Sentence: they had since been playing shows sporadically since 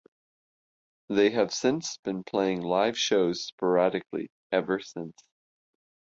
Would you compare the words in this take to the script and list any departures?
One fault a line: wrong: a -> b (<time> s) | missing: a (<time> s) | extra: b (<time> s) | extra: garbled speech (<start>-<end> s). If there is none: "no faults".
wrong: had -> have (1.3 s)
extra: live (2.6 s)
extra: ever (4.5 s)